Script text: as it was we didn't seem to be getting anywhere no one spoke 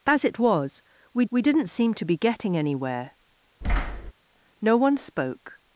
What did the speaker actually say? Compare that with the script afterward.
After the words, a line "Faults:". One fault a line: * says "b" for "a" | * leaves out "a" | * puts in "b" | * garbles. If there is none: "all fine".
as it was we we didn't seem to be getting anywhere no one spoke
Faults:
* puts in "we"